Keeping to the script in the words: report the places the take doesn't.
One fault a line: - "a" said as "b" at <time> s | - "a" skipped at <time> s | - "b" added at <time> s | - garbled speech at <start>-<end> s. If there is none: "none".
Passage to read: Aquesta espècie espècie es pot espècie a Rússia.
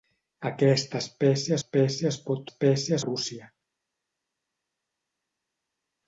none